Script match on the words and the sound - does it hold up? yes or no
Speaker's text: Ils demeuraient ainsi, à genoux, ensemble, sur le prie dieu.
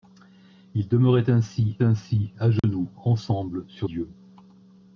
no